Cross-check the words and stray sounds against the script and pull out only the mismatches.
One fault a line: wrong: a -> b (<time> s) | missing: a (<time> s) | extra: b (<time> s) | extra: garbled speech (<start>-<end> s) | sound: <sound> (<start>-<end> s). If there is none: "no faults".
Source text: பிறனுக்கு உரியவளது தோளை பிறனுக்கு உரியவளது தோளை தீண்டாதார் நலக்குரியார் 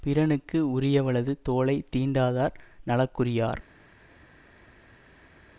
missing: பிறனுக்கு உரியவளது தோளை (1.8 s)